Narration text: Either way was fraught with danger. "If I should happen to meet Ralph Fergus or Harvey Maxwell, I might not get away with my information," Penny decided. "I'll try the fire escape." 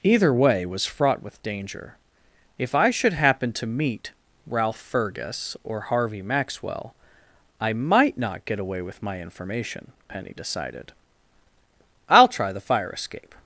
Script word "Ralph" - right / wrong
right